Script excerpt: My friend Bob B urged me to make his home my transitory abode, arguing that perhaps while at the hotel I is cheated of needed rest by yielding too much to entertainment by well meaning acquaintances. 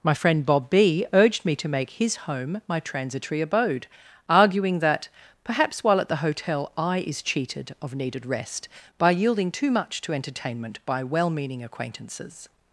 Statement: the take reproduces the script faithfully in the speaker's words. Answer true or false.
true